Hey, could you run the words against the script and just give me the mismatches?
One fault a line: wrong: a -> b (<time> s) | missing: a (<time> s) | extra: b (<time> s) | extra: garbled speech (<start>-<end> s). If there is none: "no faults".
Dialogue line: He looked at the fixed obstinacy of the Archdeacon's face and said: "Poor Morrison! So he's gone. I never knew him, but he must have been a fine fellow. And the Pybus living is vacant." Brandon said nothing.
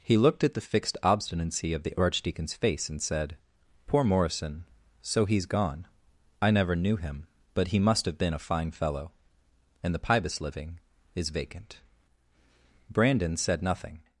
no faults